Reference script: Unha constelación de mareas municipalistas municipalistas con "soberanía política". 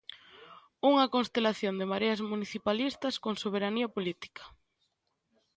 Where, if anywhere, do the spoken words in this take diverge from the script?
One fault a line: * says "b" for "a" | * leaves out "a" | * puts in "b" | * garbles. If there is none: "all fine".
* leaves out "municipalistas"